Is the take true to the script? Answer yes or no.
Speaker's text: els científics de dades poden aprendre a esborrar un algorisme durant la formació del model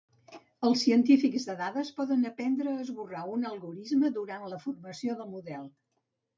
yes